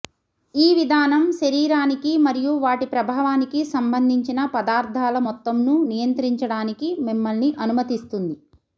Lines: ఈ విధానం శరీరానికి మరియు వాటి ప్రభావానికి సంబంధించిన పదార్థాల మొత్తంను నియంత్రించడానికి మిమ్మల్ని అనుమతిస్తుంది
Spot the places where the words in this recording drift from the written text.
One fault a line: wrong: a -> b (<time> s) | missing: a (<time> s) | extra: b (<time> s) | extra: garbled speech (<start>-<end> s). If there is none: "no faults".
no faults